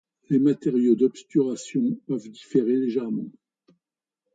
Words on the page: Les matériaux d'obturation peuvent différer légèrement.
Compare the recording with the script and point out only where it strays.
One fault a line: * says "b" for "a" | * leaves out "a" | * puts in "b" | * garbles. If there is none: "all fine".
all fine